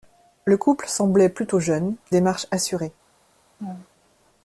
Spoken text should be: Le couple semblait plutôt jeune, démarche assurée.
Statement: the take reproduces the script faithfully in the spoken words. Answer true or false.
true